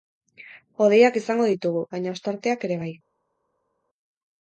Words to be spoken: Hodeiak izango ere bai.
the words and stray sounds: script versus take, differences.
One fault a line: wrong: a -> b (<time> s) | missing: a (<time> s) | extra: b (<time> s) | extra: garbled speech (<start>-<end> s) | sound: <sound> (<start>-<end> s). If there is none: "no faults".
extra: ditugu baina ostarteak (1.5 s)